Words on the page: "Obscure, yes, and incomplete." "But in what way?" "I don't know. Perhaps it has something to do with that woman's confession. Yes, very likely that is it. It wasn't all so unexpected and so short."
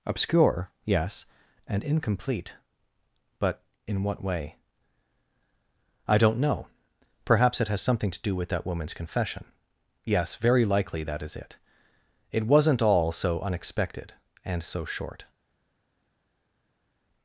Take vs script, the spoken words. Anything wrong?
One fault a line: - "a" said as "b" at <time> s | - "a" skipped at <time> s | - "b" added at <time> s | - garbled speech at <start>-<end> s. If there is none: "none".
none